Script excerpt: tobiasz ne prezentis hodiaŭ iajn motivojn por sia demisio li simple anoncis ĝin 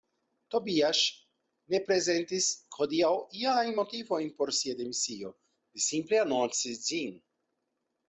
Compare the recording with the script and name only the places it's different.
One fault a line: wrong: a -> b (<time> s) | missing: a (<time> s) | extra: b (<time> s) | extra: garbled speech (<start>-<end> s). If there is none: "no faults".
no faults